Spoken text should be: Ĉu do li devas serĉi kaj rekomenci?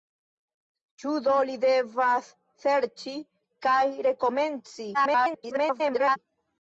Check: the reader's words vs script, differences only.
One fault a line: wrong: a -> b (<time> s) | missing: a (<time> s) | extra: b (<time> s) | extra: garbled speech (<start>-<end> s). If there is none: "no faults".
extra: garbled speech (4.9-6.2 s)